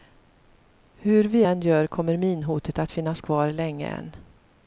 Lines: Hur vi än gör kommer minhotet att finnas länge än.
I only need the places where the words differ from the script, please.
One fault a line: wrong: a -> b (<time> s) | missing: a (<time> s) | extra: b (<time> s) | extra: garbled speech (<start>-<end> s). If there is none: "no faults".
extra: kvar (3.2 s)